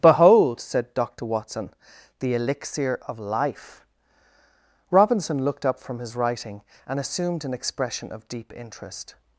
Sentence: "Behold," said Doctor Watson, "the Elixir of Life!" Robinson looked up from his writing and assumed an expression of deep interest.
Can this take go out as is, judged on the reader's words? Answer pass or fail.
pass